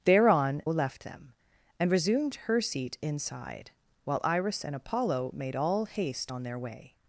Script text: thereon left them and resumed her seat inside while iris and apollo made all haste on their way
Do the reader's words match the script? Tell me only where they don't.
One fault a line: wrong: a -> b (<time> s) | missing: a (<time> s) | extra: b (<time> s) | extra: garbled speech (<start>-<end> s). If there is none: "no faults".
no faults